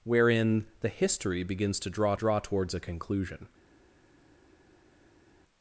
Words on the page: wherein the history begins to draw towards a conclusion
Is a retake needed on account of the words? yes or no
yes